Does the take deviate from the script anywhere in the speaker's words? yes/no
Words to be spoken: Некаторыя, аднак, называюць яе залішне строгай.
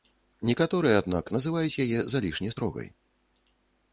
no